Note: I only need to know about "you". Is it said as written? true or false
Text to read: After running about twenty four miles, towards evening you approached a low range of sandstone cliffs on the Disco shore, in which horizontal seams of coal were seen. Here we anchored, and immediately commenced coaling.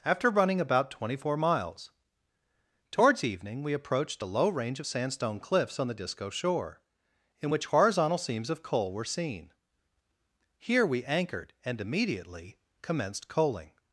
false